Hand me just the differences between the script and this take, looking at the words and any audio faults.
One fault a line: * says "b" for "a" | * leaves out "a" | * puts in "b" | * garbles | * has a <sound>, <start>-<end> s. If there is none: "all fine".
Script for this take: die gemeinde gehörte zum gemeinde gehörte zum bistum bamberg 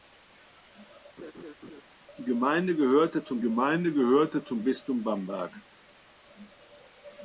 * has a laugh, 1.2-1.8 s